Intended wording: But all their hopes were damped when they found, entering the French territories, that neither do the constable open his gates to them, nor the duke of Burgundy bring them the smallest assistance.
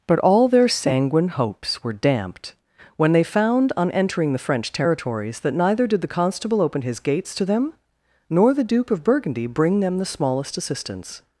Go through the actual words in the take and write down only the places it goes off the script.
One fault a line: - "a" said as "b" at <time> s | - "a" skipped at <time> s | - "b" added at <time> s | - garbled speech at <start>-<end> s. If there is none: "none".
- "sanguine" added at 0.7 s
- "on" added at 3.8 s
- "do" said as "did" at 5.8 s